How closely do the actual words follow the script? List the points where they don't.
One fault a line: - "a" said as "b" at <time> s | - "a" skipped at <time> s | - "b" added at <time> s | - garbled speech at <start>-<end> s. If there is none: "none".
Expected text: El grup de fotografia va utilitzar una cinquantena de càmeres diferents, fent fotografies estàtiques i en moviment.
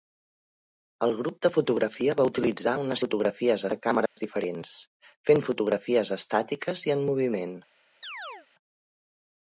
- "cinquantena" said as "fotografies" at 3.1 s